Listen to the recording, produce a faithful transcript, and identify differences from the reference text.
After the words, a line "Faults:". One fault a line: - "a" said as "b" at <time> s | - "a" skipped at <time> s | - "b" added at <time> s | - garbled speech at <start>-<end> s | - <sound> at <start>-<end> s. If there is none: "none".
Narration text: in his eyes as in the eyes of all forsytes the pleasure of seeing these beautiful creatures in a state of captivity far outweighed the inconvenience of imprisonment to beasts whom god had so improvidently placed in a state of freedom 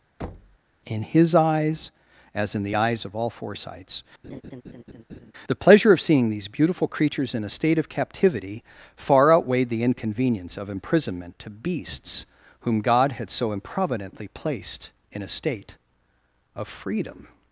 in his eyes as in the eyes of all forsytes the pleasure of seeing these beautiful creatures in a state of captivity far outweighed the inconvenience of imprisonment to beasts whom god had so improvidently placed in a state of freedom
Faults:
- thud at 0.2-0.6 s
- laugh at 4.2-5.3 s